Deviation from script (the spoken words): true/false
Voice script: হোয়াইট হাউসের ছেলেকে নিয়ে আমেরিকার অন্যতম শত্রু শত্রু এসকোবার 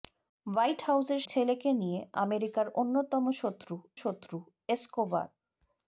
false